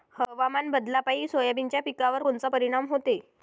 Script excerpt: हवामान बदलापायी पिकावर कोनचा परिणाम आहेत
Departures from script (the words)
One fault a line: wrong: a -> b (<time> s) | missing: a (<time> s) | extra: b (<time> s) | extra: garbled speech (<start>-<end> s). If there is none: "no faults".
extra: सोयाबीनच्या (1.3 s)
wrong: आहेत -> होते (2.9 s)